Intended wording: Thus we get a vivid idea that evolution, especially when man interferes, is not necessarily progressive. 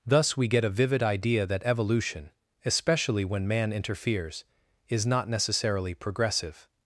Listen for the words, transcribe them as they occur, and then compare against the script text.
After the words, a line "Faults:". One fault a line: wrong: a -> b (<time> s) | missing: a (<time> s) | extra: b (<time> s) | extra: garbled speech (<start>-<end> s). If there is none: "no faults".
Thus we get a vivid idea that evolution, especially when man interferes, is not necessarily progressive.
Faults:
no faults